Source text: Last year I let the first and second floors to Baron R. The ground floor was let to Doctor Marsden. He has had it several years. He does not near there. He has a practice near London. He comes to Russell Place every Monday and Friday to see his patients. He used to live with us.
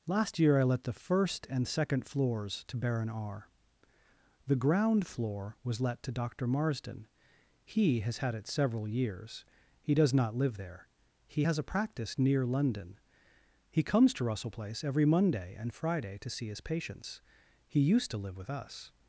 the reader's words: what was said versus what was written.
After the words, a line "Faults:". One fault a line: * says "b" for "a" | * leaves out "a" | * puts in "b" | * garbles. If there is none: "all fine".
Last year I let the first and second floors to Baron R. The ground floor was let to Doctor Marsden. He has had it several years. He does not live there. He has a practice near London. He comes to Russell Place every Monday and Friday to see his patients. He used to live with us.
Faults:
* says "live" for "near"